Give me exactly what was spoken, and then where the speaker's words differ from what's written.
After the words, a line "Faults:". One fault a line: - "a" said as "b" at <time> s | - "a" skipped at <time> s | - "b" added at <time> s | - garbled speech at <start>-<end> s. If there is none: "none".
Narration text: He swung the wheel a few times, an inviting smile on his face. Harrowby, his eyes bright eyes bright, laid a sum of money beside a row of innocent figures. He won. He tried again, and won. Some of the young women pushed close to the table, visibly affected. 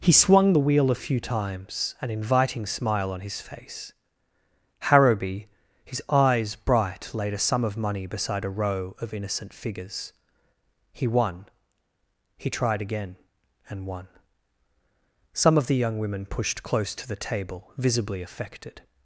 He swung the wheel a few times, an inviting smile on his face. Harrowby, his eyes bright, laid a sum of money beside a row of innocent figures. He won. He tried again, and won. Some of the young women pushed close to the table, visibly affected.
Faults:
- "eyes bright" skipped at 7.1 s